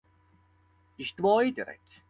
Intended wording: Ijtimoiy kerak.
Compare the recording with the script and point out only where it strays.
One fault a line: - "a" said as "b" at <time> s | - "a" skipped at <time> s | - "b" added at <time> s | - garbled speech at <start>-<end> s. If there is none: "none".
none